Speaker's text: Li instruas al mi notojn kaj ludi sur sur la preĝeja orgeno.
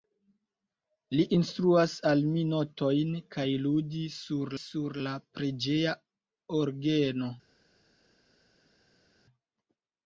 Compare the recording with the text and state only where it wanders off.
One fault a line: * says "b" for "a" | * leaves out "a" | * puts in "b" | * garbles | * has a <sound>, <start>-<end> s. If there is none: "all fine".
all fine